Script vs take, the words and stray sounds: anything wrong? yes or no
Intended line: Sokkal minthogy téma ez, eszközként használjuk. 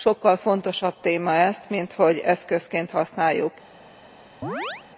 yes